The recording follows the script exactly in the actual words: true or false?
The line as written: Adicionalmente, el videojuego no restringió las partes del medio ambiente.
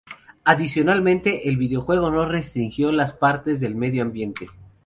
true